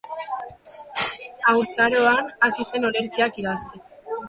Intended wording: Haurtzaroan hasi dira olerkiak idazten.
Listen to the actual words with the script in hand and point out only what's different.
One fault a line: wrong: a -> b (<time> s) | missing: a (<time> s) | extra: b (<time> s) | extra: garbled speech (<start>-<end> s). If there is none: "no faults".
wrong: dira -> zen (2.7 s)